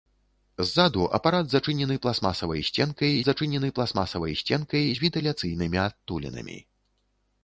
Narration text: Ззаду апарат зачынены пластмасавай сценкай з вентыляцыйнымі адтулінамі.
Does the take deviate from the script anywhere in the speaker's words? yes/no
yes